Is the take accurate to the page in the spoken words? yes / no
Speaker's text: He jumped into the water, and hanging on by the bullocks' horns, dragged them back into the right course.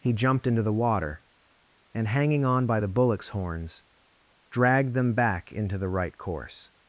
yes